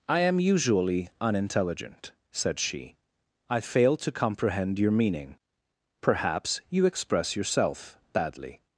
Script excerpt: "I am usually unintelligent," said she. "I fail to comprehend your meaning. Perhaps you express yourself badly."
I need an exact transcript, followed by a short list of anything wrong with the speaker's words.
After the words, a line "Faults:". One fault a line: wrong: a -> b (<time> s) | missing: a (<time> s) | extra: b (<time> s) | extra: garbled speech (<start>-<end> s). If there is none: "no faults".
"I am usually unintelligent," said she. "I fail to comprehend your meaning. Perhaps you express yourself badly."
Faults:
no faults